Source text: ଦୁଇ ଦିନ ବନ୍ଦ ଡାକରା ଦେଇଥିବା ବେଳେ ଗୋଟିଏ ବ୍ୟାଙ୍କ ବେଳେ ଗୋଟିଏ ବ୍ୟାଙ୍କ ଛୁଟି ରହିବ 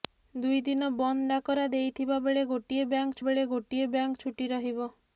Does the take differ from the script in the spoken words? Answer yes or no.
no